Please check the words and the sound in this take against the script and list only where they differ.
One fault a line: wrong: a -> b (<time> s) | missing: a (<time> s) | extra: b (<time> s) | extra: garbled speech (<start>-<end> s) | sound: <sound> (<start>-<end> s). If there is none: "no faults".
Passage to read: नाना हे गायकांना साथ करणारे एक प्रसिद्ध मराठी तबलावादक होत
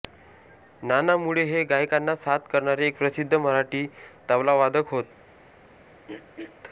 extra: मुळे (1.2 s)
sound: throat clearing (6.1-6.6 s)